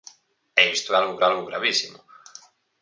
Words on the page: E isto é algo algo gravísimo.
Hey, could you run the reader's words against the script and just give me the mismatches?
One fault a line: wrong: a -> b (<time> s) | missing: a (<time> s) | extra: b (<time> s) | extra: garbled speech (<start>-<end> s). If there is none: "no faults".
no faults